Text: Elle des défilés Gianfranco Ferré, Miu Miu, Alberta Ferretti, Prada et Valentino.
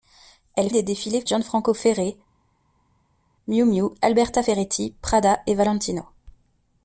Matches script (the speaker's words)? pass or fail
pass